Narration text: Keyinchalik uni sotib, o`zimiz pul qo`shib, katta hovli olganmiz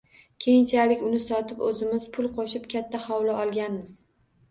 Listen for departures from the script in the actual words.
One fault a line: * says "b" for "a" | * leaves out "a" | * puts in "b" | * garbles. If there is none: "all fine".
all fine